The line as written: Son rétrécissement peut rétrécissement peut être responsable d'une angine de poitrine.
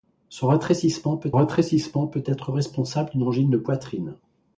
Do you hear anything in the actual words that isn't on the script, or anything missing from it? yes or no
no